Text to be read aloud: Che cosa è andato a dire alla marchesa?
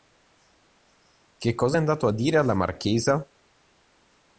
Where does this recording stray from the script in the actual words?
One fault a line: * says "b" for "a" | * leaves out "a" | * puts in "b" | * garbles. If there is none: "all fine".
all fine